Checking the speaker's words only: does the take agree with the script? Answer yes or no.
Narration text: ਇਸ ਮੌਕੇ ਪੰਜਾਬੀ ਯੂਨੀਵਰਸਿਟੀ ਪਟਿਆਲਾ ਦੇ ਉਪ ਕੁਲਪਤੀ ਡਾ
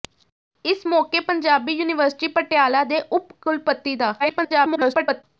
no